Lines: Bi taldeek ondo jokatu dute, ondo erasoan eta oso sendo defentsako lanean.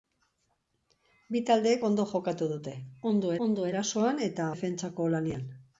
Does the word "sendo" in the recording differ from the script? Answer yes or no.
yes